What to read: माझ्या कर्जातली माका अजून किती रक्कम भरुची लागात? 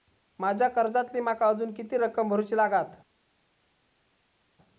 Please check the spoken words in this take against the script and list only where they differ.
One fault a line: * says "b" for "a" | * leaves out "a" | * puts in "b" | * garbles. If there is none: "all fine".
all fine